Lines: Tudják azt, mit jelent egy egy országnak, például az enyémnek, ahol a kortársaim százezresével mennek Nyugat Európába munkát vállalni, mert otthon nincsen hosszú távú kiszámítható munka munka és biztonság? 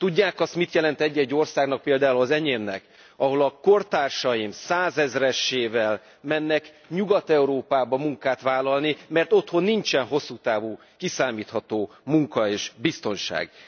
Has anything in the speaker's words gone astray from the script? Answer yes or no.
yes